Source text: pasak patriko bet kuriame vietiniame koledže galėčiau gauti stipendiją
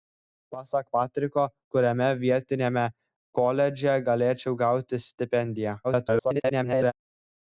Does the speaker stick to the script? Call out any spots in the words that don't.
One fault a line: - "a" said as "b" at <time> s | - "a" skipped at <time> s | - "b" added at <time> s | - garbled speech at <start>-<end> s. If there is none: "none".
- "bet" skipped at 1.5 s
- garbled speech at 5.8-6.9 s